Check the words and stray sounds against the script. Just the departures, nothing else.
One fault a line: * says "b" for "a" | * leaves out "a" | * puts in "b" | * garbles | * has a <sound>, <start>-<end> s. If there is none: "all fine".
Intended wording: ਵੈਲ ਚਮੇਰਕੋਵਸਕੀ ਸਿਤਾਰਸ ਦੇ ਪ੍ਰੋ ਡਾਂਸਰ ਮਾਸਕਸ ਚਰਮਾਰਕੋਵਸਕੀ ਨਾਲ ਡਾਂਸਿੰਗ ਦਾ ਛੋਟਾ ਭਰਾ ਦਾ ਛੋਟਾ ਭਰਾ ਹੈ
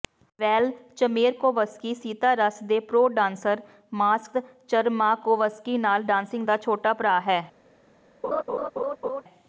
* leaves out "ਦਾ ਛੋਟਾ ਭਰਾ"
* has a laugh, 8.2-9.2 s